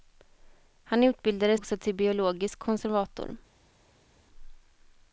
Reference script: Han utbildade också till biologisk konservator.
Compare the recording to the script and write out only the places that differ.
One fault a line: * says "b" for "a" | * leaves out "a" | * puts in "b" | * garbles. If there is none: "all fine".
all fine